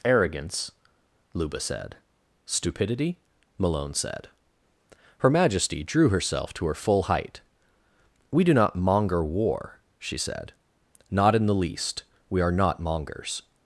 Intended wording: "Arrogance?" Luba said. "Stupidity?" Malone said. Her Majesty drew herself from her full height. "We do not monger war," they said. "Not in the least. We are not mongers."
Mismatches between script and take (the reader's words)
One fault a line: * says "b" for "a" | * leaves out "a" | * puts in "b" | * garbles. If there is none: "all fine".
* says "to" for "from"
* says "she" for "they"